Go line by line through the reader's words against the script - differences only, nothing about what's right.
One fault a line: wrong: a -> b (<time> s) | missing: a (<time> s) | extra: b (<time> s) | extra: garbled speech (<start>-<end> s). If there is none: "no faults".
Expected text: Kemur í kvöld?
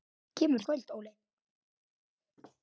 no faults